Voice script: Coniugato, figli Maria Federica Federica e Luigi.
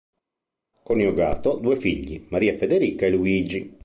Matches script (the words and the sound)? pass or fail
fail